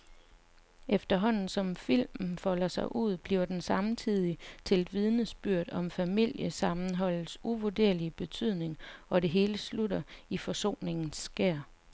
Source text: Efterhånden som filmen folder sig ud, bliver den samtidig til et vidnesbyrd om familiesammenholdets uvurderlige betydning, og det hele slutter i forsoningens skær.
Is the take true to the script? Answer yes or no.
yes